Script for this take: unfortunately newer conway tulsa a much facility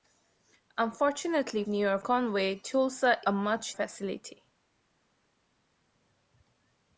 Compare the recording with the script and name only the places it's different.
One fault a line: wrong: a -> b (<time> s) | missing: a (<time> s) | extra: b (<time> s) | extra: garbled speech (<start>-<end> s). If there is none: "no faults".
no faults